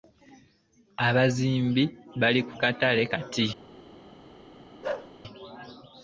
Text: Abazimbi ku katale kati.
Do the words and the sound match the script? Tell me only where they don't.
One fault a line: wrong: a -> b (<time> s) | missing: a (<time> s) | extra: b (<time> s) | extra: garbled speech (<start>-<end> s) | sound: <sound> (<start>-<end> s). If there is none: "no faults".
extra: bali (2.2 s)
sound: bark (4.8-5.1 s)